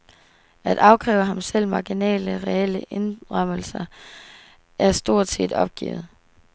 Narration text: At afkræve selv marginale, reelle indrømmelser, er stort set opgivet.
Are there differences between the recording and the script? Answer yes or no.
yes